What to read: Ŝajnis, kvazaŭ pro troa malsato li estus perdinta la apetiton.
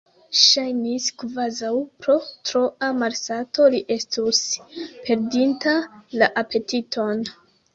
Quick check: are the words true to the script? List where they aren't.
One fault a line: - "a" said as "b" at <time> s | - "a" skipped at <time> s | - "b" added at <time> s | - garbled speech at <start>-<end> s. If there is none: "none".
none